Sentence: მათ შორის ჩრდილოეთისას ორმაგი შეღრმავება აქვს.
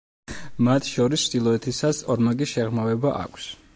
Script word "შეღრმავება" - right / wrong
right